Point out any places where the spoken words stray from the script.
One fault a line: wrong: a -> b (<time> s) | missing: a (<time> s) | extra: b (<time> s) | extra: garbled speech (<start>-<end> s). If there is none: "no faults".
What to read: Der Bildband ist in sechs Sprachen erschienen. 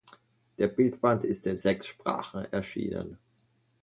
no faults